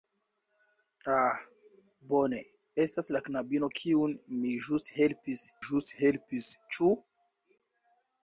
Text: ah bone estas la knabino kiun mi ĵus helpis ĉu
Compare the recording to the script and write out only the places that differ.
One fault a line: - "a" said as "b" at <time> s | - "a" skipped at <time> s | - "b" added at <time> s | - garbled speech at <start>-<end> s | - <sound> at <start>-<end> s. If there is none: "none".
- "ĵus helpis" added at 5.7 s